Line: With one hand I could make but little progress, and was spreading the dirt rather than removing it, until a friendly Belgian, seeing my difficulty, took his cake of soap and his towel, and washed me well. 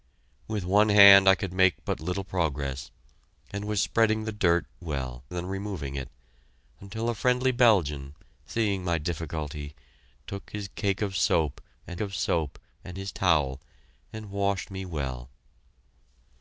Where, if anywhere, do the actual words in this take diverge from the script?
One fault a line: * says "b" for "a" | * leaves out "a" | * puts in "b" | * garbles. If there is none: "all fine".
* says "well" for "rather"
* puts in "of soap and"